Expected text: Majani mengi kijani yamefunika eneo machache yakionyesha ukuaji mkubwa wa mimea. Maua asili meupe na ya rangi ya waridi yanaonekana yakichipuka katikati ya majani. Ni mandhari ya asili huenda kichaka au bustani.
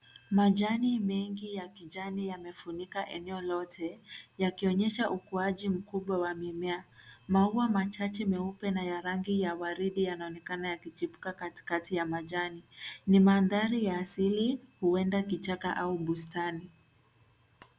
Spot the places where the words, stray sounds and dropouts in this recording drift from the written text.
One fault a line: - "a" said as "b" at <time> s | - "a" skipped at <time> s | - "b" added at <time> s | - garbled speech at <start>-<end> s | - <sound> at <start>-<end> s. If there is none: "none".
- "ya" added at 1.6 s
- "machache" said as "lote" at 3.4 s
- "asili" said as "machache" at 7.7 s